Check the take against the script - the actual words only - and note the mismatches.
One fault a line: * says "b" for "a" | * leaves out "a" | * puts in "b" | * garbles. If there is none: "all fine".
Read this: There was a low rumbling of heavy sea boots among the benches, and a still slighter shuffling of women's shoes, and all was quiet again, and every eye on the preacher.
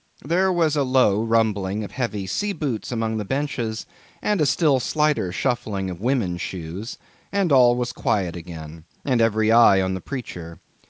all fine